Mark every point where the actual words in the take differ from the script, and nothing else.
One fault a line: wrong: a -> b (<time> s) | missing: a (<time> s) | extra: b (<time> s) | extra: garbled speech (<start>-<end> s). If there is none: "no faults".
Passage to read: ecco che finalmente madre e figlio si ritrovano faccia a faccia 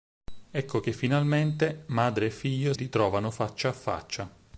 missing: si (2.7 s)